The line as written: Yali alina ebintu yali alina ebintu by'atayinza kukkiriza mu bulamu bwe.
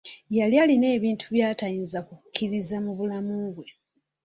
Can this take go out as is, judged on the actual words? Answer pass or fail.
fail